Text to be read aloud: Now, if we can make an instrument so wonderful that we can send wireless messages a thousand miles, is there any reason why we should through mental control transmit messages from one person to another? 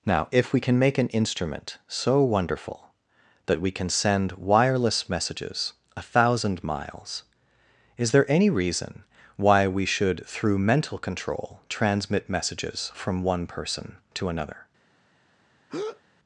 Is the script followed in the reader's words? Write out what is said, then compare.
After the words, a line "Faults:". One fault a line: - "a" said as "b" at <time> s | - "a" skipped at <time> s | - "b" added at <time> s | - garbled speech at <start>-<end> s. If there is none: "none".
Now, if we can make an instrument so wonderful that we can send wireless messages a thousand miles, is there any reason why we should through mental control transmit messages from one person to another?
Faults:
none